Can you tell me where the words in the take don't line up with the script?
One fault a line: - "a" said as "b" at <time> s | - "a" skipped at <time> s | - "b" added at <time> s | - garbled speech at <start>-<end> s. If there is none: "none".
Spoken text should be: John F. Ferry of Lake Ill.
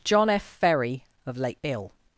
none